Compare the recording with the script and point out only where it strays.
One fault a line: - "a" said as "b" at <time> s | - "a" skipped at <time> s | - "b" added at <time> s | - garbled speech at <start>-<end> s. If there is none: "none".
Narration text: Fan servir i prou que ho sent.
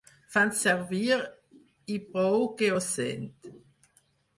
none